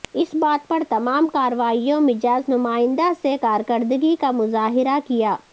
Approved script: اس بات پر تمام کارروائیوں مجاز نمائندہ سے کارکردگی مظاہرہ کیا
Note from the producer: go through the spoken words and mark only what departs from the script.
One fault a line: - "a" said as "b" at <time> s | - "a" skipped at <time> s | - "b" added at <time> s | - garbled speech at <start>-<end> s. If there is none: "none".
- "کا" added at 4.2 s